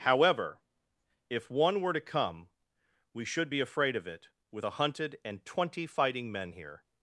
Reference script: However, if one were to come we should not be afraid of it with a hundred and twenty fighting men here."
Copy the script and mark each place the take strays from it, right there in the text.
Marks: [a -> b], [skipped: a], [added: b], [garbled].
However, if one were to come we should [skipped: not] be afraid of it with a [hundred -> hunted] and twenty fighting men here."